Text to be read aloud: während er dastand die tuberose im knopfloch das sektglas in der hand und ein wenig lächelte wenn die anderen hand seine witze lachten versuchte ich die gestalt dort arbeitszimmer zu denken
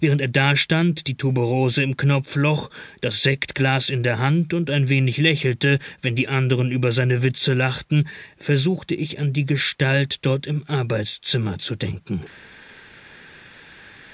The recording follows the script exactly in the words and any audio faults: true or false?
false